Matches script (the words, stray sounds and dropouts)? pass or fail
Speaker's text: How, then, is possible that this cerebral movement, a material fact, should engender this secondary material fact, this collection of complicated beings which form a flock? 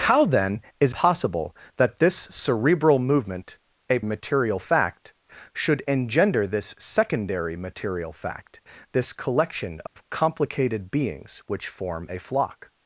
fail